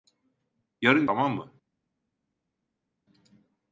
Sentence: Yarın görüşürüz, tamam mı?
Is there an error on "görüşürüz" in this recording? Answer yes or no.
yes